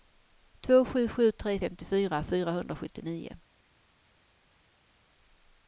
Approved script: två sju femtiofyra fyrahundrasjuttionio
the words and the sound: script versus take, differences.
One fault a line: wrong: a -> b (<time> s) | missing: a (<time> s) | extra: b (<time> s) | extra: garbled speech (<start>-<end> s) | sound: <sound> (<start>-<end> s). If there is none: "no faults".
extra: sju tre (1.1 s)